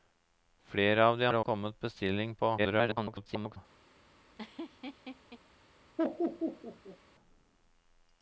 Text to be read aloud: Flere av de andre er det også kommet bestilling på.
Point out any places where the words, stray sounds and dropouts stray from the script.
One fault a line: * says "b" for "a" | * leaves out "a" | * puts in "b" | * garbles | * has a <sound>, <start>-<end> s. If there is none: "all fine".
* leaves out "andre"
* leaves out "også"
* garbles
* has a laugh, 4.4-5.4 s
* has a laugh, 6.0-7.0 s